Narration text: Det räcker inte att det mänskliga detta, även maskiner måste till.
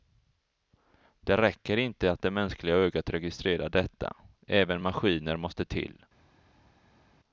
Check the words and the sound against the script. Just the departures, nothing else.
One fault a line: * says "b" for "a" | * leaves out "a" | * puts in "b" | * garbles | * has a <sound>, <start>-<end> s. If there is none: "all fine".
* puts in "ögat registrerar"